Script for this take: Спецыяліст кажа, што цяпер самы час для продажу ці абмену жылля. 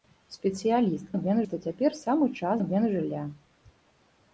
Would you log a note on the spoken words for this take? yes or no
yes